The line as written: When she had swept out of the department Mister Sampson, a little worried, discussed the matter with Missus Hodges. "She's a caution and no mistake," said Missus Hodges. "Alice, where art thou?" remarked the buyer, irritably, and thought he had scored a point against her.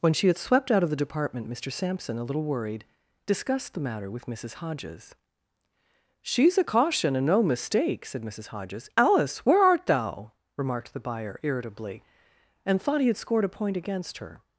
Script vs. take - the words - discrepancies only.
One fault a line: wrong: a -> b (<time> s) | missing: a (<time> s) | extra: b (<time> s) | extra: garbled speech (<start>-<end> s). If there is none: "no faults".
no faults